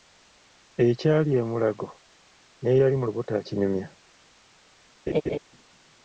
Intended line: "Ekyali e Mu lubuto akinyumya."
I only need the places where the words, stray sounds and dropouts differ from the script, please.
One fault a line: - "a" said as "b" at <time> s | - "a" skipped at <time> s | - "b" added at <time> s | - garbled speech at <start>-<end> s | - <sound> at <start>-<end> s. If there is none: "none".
- "Mulago n'eyali" added at 1.5 s
- laugh at 5.1-5.4 s